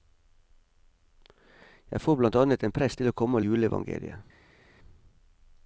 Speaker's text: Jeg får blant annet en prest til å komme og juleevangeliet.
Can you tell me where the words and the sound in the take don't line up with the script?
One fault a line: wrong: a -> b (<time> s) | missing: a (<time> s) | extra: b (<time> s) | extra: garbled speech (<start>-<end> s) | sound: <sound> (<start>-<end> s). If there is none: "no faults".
no faults